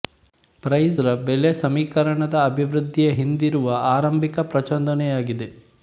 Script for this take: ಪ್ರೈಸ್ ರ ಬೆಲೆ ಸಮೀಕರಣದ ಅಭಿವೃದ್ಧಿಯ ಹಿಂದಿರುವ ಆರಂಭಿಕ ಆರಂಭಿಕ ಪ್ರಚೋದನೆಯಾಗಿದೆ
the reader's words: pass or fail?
fail